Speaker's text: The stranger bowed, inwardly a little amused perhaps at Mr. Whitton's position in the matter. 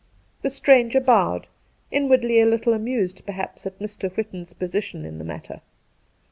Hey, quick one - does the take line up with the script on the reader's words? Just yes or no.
yes